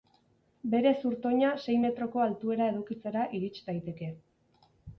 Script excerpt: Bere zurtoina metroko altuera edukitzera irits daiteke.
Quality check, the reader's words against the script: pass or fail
fail